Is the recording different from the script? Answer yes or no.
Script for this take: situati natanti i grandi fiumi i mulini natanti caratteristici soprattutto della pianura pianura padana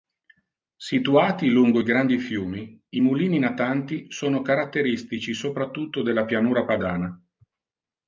yes